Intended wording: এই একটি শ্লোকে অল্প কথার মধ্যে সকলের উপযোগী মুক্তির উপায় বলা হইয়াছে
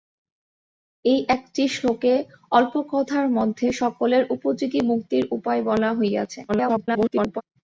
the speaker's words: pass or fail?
fail